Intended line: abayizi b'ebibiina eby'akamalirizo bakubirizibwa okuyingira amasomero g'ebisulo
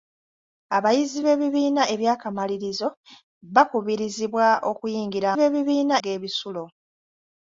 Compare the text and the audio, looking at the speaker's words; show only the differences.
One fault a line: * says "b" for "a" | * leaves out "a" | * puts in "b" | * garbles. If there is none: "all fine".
* says "b'ebibiina" for "amasomero"